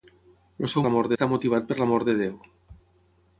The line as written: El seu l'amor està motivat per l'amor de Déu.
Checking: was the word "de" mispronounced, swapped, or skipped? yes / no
no